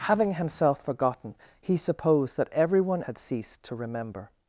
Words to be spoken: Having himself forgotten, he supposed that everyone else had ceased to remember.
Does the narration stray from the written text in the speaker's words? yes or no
yes